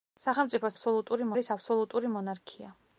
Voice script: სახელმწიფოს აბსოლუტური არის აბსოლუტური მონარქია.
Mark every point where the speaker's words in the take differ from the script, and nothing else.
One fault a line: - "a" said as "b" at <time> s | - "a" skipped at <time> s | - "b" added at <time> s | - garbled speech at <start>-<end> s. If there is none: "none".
none